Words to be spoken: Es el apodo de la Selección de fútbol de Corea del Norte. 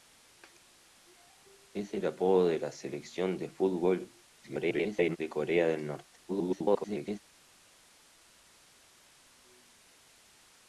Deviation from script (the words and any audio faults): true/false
true